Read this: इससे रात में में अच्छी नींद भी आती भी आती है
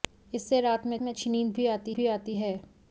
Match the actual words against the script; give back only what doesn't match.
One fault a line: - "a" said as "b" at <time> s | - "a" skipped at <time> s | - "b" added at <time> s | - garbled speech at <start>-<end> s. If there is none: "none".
none